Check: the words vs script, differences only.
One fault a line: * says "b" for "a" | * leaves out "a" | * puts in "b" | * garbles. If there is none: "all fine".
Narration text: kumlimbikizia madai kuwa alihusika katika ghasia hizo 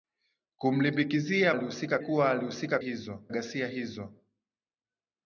* says "alihusika" for "madai"
* says "hizo" for "katika"